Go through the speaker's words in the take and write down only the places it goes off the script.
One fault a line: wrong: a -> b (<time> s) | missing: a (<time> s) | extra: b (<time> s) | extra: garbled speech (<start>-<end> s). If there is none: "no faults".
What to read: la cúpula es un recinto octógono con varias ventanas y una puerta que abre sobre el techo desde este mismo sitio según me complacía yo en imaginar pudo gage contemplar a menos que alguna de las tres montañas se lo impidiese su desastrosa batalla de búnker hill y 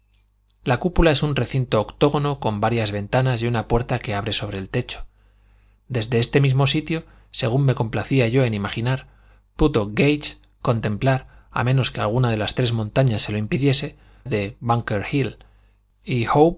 missing: su desastrosa batalla (14.0 s)